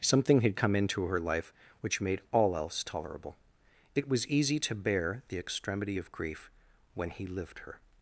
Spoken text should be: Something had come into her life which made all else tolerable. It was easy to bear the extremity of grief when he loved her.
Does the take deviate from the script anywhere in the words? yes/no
yes